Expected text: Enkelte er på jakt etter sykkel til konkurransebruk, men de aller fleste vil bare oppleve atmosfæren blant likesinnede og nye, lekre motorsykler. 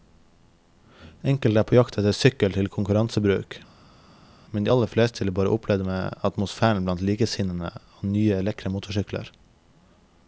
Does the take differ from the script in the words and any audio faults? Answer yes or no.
no